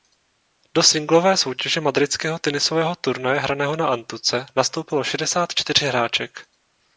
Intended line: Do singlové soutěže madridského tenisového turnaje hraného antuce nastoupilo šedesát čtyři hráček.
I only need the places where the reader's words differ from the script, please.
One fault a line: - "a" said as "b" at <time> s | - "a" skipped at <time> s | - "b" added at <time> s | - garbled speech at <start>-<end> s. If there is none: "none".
- "na" added at 3.8 s